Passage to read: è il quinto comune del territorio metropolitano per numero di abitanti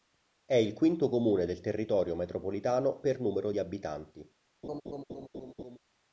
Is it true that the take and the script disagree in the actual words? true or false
false